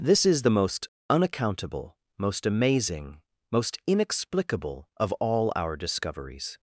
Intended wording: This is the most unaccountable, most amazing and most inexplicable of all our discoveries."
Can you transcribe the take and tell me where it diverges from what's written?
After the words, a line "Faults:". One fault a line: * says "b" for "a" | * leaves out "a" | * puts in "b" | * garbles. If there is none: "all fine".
This is the most unaccountable, most amazing most inexplicable of all our discoveries."
Faults:
* leaves out "and"